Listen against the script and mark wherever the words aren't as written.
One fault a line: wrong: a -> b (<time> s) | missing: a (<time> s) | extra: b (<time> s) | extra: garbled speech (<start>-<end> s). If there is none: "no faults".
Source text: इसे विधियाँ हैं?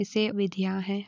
no faults